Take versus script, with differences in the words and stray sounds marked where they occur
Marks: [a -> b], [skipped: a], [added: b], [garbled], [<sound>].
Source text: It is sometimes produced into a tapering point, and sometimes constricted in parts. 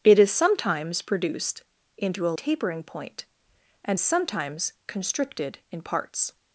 It is sometimes produced into a tapering point, and sometimes constricted in parts.